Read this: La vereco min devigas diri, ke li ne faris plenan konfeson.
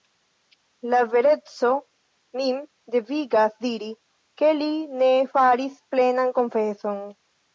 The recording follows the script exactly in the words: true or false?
true